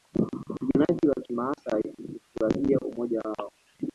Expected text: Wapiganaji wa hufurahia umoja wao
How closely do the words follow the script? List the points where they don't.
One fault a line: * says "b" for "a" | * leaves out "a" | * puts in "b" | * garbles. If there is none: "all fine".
* puts in "kimaasai"